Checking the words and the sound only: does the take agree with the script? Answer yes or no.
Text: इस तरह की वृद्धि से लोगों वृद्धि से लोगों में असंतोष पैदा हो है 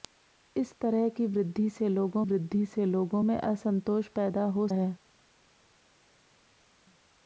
yes